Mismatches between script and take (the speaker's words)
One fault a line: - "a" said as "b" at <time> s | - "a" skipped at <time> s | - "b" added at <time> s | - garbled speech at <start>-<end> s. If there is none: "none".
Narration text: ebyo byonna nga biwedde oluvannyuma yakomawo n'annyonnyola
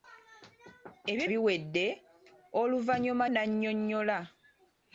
- "byonna nga" skipped at 1.2 s
- "yakomawo" skipped at 3.2 s